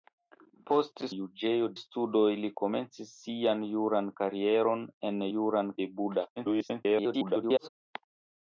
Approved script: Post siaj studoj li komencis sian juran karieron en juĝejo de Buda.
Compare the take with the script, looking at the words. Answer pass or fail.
fail